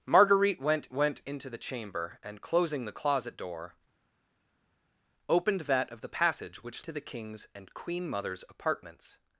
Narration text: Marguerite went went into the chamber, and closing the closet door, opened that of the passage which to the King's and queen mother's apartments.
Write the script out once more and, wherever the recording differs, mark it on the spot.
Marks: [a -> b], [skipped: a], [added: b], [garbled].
Marguerite went went into the chamber, and closing the closet door, opened that of the passage which to the King's and queen mother's apartments.